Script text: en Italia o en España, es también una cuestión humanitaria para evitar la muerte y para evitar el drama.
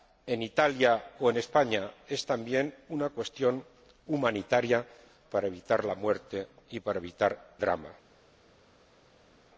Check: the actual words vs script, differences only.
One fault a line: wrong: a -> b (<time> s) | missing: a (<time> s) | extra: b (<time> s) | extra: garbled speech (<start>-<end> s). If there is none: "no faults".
missing: el (7.6 s)